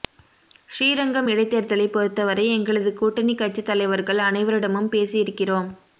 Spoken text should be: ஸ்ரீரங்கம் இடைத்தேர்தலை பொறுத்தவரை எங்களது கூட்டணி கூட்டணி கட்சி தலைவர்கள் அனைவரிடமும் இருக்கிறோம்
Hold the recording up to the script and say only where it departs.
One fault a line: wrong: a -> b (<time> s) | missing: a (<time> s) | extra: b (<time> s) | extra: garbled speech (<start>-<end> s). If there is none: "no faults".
missing: கூட்டணி (3.4 s)
extra: பேசி (4.9 s)